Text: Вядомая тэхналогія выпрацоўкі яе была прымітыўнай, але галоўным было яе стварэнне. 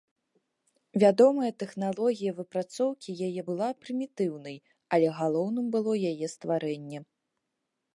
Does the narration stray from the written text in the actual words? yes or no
no